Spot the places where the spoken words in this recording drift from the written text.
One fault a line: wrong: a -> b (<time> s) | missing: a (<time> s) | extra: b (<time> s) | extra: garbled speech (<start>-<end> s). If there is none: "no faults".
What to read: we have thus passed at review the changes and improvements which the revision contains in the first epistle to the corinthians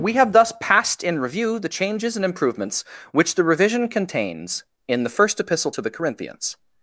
wrong: at -> in (1.0 s)